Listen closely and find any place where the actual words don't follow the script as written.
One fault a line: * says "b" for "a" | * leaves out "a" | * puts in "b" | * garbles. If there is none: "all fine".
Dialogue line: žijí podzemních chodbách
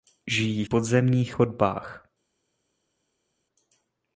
all fine